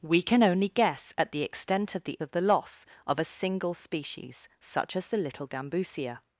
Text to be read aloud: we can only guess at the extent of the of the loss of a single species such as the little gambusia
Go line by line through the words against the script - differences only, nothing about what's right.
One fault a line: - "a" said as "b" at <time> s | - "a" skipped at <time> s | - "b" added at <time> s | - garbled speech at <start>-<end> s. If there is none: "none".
none